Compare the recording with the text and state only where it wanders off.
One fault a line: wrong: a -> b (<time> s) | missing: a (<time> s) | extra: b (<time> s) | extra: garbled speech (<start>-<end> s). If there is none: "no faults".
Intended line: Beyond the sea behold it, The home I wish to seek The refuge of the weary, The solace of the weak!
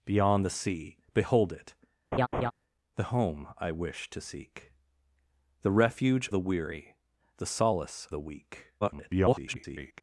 missing: of (6.3 s)
missing: of (8.1 s)
extra: garbled speech (8.8-10.0 s)